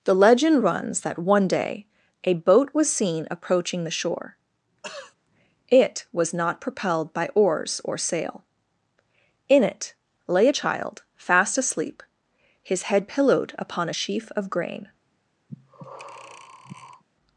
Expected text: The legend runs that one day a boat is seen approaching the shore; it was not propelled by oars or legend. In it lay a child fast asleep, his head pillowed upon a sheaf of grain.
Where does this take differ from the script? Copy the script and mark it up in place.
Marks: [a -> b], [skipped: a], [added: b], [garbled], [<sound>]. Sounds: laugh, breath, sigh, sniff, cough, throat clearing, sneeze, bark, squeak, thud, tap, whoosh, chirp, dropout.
The legend runs that one day a boat [is -> was] seen approaching the shore; [throat clearing] it was not propelled by oars or [legend. -> sail] In it lay a child fast asleep, his head pillowed upon a sheaf of grain. [breath]